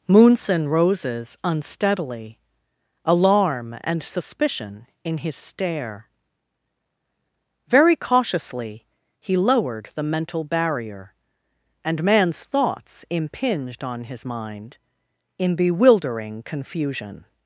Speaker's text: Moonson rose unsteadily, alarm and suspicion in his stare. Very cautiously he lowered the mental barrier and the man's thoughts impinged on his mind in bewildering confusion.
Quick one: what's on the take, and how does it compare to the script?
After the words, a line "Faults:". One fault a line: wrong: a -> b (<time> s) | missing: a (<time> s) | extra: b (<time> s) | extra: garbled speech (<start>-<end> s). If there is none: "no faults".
Moonson roses unsteadily, alarm and suspicion in his stare. Very cautiously he lowered the mental barrier and man's thoughts impinged on his mind in bewildering confusion.
Faults:
wrong: rose -> roses (0.7 s)
missing: the (12.0 s)